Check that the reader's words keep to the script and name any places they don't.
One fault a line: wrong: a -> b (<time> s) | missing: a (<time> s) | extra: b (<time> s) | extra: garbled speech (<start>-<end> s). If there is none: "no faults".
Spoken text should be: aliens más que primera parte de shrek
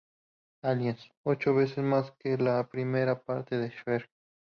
extra: ocho veces (1.2 s)
extra: la (2.4 s)